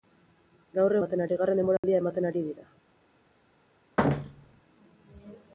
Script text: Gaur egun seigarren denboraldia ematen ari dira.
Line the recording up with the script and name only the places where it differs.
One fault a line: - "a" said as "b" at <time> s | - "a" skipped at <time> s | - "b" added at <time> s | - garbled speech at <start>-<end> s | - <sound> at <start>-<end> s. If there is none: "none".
- "egun" said as "ematen" at 1.0 s
- dropout at 1.8-1.8 s
- thud at 4.0-4.6 s